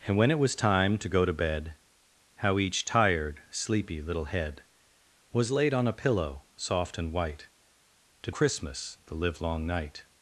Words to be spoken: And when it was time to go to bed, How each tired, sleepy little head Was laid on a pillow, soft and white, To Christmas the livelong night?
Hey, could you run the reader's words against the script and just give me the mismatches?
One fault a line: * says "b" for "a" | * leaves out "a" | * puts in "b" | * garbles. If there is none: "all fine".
all fine